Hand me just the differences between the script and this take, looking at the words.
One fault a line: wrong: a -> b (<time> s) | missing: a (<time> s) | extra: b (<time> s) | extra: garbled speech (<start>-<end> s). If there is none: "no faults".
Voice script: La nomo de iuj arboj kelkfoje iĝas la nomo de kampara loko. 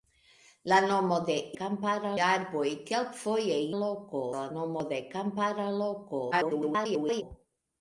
wrong: iuj -> kampara (1.6 s)
wrong: iĝas -> loko (3.8 s)
extra: garbled speech (6.3-7.2 s)